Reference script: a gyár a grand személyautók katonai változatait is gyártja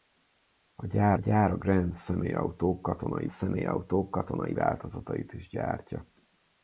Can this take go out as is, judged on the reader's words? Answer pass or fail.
fail